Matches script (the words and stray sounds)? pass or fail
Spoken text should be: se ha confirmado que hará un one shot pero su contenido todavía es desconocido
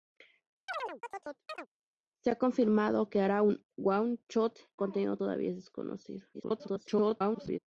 fail